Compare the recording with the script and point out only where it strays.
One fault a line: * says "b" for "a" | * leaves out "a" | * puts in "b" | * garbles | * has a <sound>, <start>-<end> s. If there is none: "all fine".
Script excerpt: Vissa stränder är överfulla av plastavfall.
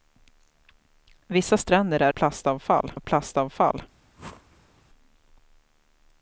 * says "plastavfall" for "överfulla"
* has a whoosh, 4.2-4.8 s